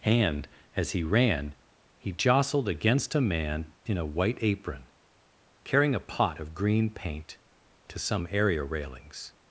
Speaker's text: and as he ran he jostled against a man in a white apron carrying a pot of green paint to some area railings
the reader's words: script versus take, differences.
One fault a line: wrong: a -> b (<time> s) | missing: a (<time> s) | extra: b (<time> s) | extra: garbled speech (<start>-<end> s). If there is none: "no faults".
no faults